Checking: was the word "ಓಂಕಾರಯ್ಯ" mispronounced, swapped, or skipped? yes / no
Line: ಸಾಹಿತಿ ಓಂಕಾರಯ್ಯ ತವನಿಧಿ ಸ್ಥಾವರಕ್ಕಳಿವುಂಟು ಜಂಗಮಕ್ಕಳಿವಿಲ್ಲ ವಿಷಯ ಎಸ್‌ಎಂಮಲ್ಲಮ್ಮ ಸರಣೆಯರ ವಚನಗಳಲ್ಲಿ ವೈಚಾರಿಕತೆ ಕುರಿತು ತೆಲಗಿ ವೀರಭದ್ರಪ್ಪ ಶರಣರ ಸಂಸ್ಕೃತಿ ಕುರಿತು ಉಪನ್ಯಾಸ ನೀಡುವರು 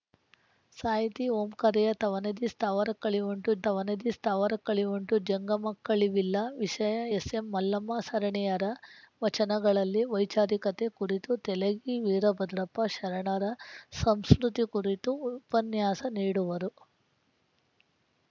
no